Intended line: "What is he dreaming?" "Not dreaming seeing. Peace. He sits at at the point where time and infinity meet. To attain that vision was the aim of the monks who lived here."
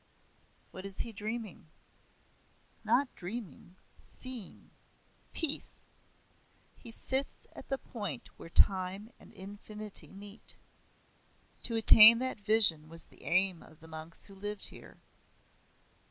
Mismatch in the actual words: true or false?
true